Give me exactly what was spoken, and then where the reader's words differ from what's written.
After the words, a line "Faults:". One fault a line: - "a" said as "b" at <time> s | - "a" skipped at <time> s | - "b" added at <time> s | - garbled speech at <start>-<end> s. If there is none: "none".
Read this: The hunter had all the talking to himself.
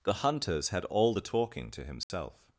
The hunters had all the talking to himself.
Faults:
- "hunter" said as "hunters" at 0.1 s